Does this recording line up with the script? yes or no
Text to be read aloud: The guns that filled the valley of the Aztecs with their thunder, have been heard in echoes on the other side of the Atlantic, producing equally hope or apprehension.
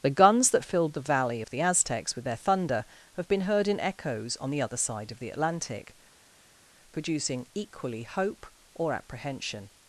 yes